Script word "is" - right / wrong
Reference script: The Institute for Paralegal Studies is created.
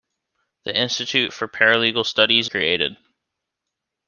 wrong